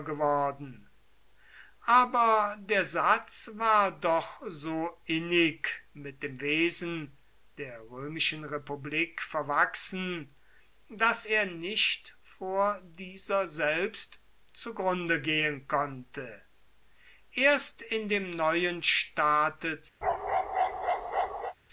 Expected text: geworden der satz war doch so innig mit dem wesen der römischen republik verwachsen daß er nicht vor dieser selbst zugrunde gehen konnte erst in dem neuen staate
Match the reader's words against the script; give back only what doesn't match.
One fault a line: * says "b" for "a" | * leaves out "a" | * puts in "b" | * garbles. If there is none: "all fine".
* puts in "aber"